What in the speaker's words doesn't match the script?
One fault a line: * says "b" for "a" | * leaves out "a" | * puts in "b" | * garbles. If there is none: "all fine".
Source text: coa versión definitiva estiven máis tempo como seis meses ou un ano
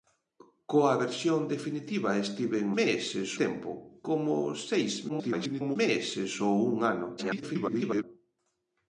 * says "meses" for "máis"
* garbles
* garbles